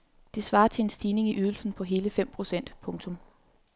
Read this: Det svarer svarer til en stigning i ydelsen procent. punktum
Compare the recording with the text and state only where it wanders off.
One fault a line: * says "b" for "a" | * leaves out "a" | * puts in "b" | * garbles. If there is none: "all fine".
* leaves out "svarer"
* puts in "på hele fem"